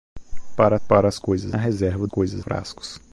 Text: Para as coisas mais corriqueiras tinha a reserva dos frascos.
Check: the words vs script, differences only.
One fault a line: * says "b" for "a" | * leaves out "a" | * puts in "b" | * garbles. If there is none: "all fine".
* puts in "para"
* leaves out "mais corriqueiras tinha"
* says "coisas" for "dos"